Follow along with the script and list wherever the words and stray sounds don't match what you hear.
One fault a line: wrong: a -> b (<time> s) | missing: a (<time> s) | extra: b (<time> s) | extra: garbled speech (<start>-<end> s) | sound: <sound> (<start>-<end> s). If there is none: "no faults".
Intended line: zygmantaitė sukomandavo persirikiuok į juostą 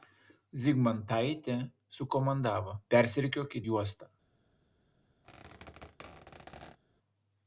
sound: squeak (5.2-6.8 s)